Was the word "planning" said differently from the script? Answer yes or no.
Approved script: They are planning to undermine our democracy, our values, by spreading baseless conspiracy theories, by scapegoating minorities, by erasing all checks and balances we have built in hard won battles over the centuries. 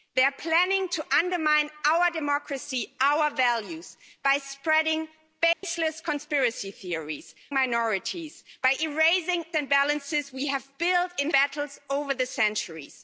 no